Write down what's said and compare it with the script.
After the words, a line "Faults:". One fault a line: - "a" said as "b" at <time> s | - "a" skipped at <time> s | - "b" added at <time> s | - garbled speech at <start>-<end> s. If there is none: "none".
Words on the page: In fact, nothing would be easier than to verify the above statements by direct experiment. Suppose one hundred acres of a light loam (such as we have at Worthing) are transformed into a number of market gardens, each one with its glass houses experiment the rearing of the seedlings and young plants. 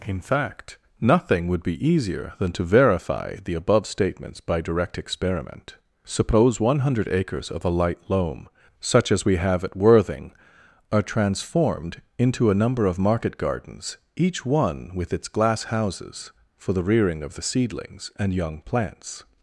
In fact, nothing would be easier than to verify the above statements by direct experiment. Suppose one hundred acres of a light loam (such as we have at Worthing) are transformed into a number of market gardens, each one with its glass houses for the rearing of the seedlings and young plants.
Faults:
- "experiment" said as "for" at 16.5 s